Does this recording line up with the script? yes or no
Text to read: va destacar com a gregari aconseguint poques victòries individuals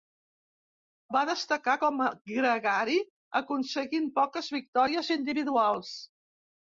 yes